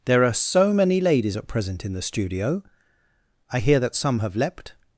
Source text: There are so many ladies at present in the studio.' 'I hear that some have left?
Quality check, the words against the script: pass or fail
fail